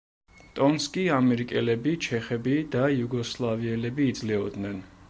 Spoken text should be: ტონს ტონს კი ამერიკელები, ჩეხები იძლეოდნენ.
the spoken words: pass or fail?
fail